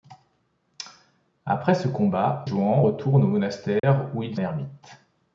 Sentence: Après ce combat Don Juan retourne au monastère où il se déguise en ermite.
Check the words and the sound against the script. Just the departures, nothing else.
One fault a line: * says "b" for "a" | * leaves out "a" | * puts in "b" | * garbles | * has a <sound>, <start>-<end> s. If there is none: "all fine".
* leaves out "Don"
* has a dropout, 3.8-3.8 s
* leaves out "se déguise en"